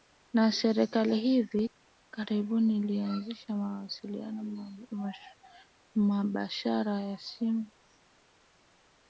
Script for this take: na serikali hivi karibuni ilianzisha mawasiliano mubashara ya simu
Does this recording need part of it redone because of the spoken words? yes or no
no